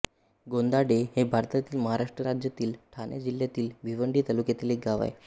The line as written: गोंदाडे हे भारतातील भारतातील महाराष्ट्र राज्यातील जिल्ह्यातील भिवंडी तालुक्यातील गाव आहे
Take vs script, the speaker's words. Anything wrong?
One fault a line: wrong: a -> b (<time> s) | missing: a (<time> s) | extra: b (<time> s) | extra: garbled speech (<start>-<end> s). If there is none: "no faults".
missing: भारतातील (1.8 s)
extra: ठाणे (2.9 s)
extra: एक (4.7 s)